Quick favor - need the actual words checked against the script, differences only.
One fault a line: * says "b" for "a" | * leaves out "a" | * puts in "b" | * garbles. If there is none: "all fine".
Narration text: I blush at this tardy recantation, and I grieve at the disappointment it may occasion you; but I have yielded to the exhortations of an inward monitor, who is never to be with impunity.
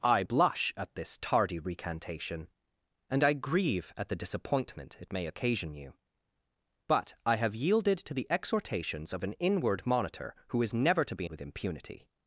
all fine